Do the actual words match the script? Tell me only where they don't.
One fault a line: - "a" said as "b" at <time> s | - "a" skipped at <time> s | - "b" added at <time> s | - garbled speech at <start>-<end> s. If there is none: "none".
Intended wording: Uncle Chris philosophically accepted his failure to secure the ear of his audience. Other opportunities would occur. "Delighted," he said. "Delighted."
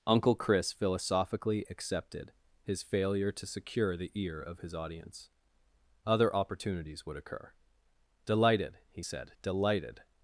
none